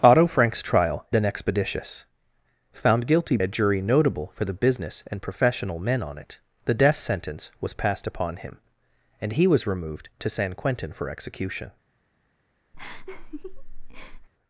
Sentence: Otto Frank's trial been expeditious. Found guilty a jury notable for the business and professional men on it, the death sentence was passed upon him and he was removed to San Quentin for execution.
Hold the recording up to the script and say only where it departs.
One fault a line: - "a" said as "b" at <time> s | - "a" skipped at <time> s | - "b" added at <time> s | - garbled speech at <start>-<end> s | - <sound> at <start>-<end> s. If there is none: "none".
- laugh at 12.7-14.3 s